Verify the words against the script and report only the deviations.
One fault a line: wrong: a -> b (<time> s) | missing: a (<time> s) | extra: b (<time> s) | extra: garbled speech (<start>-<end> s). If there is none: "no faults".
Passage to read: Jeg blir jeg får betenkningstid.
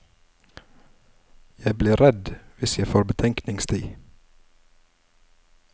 extra: redd hvis (2.0 s)